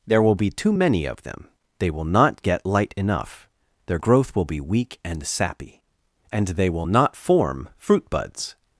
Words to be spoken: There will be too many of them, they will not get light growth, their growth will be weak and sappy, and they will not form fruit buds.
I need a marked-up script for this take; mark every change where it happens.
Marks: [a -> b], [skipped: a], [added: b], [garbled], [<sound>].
There will be too many of them, they will not get light [growth, -> enough] their growth will be weak and sappy, and they will not form fruit buds.